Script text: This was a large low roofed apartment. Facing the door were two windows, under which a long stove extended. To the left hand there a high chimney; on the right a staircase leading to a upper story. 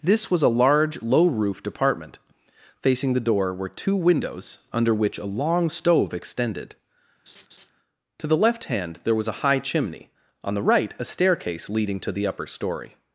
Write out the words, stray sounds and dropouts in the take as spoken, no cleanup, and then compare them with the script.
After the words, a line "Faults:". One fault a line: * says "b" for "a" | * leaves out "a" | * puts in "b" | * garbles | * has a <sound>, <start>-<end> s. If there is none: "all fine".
This was a large low roofed apartment. Facing the door were two windows, under which a long stove extended. To the left hand there was a high chimney; on the right a staircase leading to the upper story.
Faults:
* has a laugh, 7.3-7.7 s
* puts in "was"
* says "the" for "a"